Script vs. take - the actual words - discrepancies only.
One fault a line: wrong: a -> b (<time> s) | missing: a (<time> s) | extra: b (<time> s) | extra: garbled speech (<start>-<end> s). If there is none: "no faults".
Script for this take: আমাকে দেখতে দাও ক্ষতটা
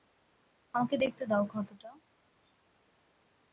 no faults